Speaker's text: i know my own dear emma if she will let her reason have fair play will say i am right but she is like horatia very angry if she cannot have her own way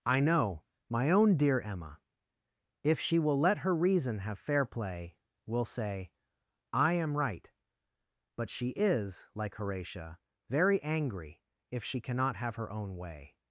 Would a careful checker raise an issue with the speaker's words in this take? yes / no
no